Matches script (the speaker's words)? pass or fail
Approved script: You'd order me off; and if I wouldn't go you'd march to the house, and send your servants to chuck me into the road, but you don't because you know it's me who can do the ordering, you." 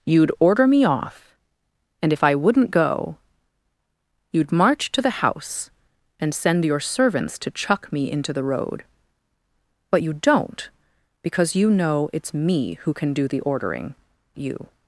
pass